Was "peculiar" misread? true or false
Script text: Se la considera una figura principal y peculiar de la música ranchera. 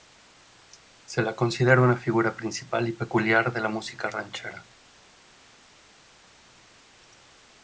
false